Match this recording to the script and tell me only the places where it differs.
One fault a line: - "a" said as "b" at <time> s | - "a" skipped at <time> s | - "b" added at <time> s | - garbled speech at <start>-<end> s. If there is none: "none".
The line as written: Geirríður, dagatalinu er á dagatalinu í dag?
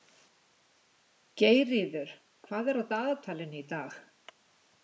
- "dagatalinu" said as "hvað" at 2.5 s